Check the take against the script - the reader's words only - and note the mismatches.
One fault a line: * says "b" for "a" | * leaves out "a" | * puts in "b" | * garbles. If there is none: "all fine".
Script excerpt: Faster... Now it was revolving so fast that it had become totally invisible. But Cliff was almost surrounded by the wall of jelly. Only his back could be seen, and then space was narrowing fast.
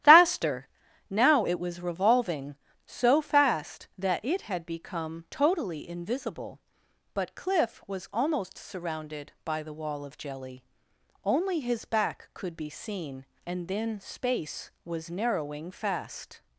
all fine